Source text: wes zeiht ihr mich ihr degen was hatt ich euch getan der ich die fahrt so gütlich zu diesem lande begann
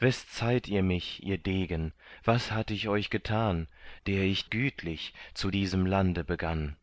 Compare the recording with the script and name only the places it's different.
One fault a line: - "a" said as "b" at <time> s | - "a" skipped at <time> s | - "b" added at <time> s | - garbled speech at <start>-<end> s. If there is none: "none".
- "die fahrt so" skipped at 4.5 s